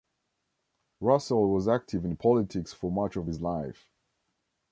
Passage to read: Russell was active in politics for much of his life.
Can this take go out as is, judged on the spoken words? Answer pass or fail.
pass